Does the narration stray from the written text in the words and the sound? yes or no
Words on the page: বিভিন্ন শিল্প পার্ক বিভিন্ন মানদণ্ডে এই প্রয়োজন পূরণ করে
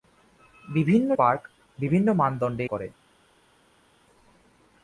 yes